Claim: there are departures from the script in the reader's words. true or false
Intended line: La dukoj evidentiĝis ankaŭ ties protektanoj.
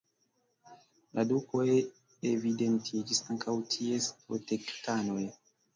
false